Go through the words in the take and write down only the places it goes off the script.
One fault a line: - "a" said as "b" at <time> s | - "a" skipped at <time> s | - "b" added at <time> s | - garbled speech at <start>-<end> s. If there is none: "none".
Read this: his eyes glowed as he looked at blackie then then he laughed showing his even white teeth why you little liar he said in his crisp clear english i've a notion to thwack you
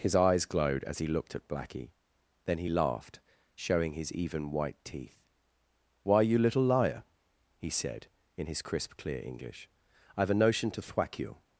- "then" skipped at 2.6 s